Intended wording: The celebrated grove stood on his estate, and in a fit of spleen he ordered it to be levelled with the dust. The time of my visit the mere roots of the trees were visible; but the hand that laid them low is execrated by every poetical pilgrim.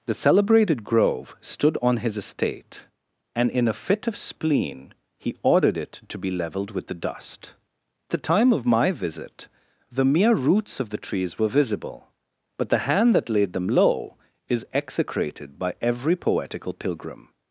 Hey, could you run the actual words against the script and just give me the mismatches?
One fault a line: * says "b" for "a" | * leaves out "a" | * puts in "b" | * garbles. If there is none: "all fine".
all fine